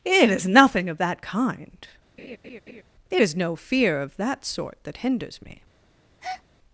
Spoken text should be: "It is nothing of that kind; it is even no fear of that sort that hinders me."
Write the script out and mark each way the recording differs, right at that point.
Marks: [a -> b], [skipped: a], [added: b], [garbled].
"It is nothing of that kind; it is [skipped: even] no fear of that sort that hinders me."